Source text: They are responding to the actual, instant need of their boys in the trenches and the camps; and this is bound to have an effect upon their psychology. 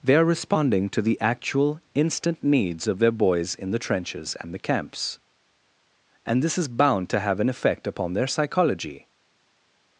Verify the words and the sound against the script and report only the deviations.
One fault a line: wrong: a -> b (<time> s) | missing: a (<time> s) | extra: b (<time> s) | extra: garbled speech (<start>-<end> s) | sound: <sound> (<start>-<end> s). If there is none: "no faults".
wrong: need -> needs (2.4 s)